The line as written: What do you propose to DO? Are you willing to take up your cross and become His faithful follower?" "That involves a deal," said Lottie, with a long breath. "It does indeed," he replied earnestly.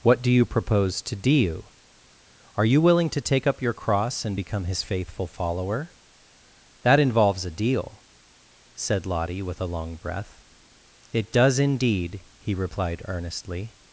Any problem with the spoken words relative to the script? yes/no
no